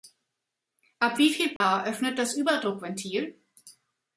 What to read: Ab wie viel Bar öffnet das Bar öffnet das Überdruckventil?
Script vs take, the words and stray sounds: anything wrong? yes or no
yes